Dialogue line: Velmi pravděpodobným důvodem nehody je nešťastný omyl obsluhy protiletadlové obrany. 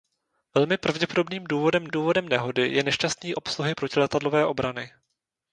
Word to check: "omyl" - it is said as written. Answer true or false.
false